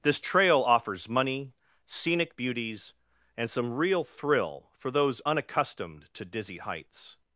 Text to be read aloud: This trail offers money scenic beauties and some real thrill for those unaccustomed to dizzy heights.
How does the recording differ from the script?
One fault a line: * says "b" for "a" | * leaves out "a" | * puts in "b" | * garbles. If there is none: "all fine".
all fine